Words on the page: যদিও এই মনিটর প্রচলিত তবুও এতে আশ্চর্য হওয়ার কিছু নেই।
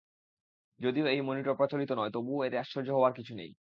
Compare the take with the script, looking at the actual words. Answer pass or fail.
fail